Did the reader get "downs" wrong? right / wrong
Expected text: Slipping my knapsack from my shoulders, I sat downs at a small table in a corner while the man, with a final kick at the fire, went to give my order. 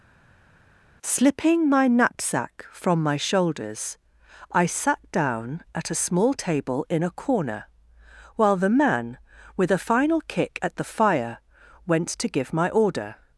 wrong